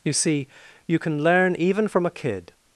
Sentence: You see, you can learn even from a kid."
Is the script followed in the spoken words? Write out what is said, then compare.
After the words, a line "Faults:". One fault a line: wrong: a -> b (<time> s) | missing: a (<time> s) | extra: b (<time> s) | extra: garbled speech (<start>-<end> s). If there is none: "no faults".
You see, you can learn even from a kid."
Faults:
no faults